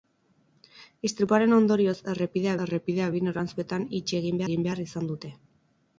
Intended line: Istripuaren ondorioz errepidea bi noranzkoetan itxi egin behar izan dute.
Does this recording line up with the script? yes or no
no